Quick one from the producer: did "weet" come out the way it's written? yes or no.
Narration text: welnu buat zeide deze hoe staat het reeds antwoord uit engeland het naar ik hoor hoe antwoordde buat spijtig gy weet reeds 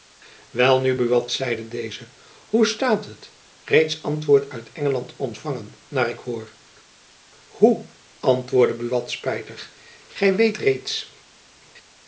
yes